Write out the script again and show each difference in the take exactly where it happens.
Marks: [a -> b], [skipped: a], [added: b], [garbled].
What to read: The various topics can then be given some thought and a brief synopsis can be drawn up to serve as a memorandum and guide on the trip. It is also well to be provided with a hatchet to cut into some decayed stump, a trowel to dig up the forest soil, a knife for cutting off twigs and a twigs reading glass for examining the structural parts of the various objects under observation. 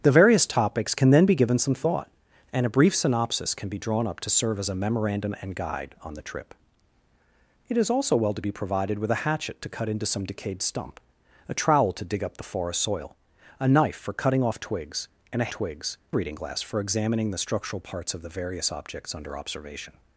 The various topics can then be given some thought and a brief synopsis can be drawn up to serve as a memorandum and guide on the trip. It is also well to be provided with a hatchet to cut into some decayed stump, a trowel to dig up the forest soil, a knife for cutting off twigs and a twigs reading glass for examining the structural parts of the various objects under observation.